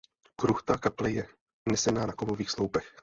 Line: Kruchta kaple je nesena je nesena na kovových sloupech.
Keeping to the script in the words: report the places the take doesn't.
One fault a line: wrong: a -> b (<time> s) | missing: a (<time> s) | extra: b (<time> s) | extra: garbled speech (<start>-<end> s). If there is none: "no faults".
missing: je nesena (2.1 s)